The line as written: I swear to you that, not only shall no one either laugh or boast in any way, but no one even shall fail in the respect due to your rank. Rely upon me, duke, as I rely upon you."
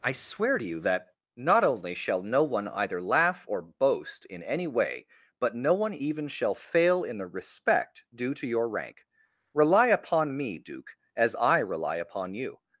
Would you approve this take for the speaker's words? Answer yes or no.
yes